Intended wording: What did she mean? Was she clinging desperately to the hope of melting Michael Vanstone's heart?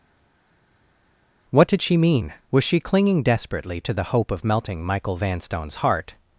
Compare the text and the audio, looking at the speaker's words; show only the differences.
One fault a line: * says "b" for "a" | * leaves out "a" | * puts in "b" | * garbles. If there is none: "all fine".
all fine